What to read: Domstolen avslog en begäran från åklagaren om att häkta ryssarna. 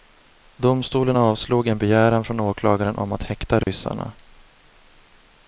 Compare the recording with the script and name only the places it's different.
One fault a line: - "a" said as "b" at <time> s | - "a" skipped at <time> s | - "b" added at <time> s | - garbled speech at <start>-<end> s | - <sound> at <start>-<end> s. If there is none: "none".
- dropout at 3.6-3.7 s